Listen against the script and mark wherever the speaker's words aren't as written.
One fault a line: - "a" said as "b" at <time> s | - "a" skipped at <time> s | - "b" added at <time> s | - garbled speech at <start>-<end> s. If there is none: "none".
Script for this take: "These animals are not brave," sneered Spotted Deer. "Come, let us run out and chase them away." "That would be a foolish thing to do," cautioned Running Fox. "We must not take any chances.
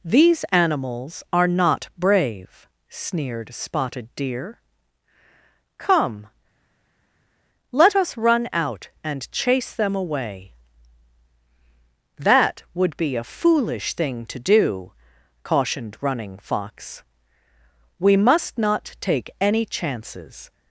none